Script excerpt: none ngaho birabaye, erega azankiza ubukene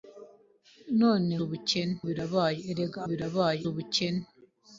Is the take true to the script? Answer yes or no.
no